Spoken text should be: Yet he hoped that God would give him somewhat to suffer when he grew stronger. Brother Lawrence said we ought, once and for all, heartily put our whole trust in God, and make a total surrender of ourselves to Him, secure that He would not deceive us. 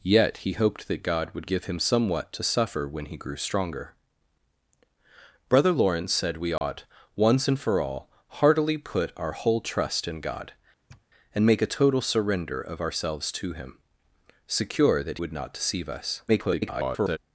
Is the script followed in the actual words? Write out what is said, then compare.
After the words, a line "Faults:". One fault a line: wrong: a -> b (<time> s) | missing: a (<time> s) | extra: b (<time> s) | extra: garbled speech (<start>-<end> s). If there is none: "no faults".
Yet he hoped that God would give him somewhat to suffer when he grew stronger. Brother Lawrence said we ought, once and for all, heartily put our whole trust in God, and make a total surrender of ourselves to Him, secure that Would not deceive us. [garbled]
Faults:
missing: He (15.2 s)
extra: garbled speech (16.3-17.2 s)